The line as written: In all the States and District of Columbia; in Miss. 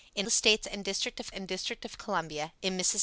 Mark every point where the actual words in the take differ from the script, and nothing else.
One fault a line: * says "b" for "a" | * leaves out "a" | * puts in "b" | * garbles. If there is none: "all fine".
* leaves out "all"
* puts in "and District of"